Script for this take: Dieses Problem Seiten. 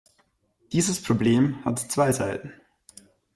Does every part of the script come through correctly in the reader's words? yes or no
no